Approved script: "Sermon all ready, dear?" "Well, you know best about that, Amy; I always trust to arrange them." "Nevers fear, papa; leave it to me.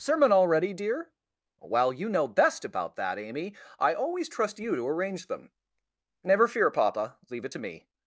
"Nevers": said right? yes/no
no